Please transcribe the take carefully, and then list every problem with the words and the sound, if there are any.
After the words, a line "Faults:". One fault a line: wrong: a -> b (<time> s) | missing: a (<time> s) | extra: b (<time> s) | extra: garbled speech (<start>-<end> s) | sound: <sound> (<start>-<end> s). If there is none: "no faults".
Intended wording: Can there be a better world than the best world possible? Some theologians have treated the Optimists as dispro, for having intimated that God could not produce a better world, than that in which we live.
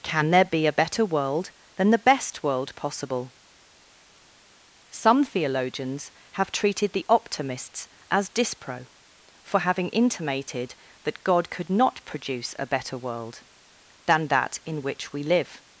Can there be a better world than the best world possible? Some theologians have treated the Optimists as dispro, for having intimated that God could not produce a better world, than that in which we live.
Faults:
no faults